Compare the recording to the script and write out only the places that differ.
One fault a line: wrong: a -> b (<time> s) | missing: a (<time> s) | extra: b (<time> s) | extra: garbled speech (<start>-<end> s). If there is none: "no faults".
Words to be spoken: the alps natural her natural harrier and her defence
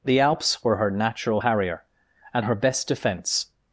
wrong: natural -> were (0.6 s)
extra: best (2.5 s)